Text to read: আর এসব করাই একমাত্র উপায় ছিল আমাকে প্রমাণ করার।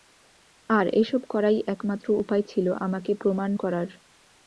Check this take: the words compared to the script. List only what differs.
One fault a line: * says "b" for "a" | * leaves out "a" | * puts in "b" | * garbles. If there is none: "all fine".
all fine